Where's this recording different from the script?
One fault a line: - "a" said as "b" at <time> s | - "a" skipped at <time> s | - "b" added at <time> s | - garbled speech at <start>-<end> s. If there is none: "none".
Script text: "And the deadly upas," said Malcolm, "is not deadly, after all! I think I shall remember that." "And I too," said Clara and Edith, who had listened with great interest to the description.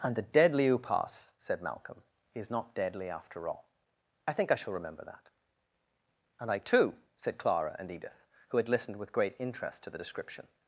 none